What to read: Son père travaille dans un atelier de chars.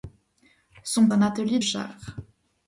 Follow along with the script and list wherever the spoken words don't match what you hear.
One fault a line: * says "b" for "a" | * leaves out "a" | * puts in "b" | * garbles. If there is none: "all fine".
* leaves out "père travaille dans"
* leaves out "de"